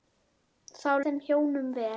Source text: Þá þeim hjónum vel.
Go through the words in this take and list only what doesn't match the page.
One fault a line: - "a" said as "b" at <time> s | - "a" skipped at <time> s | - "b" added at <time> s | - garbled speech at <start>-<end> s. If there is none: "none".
none